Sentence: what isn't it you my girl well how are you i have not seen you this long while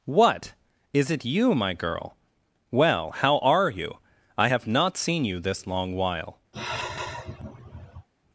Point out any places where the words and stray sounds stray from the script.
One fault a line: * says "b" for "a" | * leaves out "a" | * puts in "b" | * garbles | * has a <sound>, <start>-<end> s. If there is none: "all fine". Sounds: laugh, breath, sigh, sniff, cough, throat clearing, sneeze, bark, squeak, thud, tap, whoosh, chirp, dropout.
* says "is" for "isn't"
* has a sigh, 6.5-8.1 s